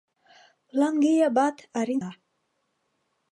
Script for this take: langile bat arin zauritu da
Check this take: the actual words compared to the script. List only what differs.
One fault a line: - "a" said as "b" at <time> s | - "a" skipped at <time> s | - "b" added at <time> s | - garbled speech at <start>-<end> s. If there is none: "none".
- "zauritu" skipped at 2.0 s